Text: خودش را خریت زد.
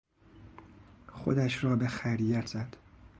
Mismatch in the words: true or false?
true